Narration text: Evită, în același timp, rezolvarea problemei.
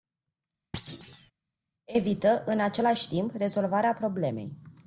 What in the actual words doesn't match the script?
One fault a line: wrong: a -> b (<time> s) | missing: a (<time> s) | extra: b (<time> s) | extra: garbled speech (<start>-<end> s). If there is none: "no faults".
no faults